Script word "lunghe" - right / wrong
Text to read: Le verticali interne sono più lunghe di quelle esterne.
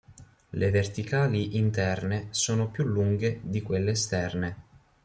right